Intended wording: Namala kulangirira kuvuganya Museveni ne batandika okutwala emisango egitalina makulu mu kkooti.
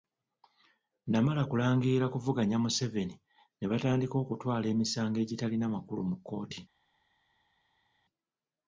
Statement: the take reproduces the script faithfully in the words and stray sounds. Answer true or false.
true